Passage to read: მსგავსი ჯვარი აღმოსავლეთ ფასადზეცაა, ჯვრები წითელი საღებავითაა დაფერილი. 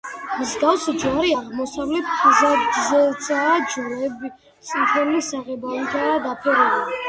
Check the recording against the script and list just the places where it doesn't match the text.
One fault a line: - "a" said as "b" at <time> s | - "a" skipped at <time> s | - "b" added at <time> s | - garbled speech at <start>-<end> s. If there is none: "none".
none